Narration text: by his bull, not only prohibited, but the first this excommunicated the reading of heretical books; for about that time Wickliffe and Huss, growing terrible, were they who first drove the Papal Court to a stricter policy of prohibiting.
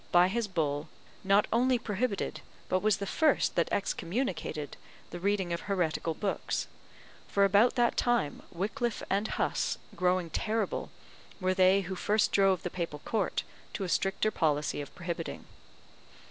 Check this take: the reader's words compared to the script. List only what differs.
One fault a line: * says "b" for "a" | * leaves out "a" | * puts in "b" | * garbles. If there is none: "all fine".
* puts in "was"
* says "that" for "this"